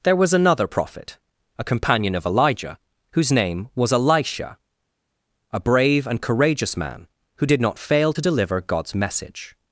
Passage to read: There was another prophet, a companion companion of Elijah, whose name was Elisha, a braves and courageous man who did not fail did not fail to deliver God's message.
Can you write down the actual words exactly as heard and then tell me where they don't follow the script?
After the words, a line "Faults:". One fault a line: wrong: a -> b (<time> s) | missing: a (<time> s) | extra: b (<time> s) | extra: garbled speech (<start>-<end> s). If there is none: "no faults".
There was another prophet, a companion of Elijah, whose name was Elisha, a brave and courageous man who did not fail to deliver God's message.
Faults:
missing: companion (2.1 s)
wrong: braves -> brave (5.6 s)
missing: did not fail (8.1 s)